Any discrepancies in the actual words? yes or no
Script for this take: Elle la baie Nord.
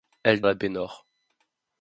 no